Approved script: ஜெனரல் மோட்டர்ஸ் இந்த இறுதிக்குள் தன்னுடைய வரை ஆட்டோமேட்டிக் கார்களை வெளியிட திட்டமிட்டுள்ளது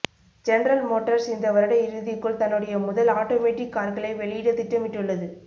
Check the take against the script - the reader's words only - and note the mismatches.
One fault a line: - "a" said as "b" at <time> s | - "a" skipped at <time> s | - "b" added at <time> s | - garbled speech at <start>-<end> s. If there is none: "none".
- "வருட" added at 1.5 s
- "வரை" said as "முதல்" at 2.8 s